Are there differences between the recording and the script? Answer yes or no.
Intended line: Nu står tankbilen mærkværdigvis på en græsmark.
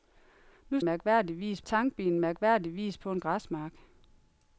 yes